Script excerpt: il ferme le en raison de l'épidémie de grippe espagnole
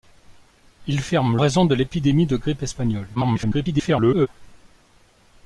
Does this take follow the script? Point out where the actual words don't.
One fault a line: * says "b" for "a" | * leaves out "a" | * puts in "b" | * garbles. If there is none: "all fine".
* leaves out "le en"
* garbles